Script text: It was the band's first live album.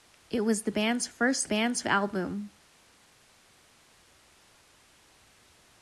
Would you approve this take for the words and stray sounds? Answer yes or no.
no